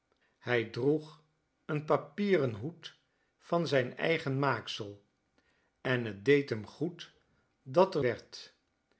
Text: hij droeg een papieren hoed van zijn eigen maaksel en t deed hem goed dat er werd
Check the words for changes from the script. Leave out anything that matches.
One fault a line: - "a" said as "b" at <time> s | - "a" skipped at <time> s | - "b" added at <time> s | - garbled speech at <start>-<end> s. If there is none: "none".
none